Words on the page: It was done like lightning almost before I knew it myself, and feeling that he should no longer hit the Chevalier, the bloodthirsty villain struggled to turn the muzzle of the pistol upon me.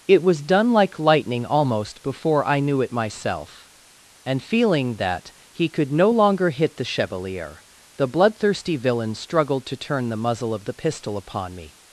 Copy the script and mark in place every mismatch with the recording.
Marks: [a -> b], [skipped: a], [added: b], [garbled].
It was done like lightning almost before I knew it myself, and feeling that he [should -> could] no longer hit the Chevalier, the bloodthirsty villain struggled to turn the muzzle of the pistol upon me.